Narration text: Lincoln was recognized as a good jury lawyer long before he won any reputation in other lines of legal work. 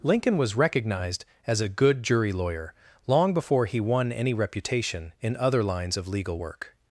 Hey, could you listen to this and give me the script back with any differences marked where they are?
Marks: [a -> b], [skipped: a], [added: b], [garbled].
Lincoln was recognized as a good jury lawyer long before he won any reputation in other lines of legal work.